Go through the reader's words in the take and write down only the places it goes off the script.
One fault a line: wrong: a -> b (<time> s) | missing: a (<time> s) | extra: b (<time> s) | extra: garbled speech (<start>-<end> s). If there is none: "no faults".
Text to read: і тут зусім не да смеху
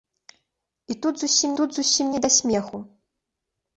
extra: тут зусім (1.6 s)